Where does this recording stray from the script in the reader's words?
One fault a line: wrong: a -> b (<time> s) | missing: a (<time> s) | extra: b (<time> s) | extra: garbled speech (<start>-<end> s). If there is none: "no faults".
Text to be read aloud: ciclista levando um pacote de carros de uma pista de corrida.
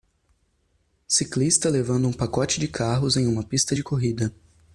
wrong: de -> em (3.2 s)